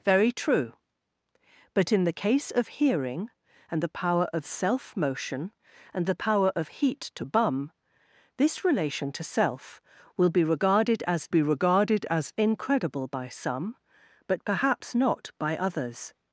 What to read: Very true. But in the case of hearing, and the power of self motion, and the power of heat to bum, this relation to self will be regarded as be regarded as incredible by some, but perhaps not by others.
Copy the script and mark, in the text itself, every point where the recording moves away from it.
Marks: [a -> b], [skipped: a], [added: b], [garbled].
Very true. But in the case of hearing, and the power of self motion, and the power of heat to bum, this relation to self will be regarded as be regarded as incredible by some, but perhaps not by others.